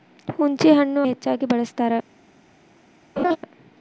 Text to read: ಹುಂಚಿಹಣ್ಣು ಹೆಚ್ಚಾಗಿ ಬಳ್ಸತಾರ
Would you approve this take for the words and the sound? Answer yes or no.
no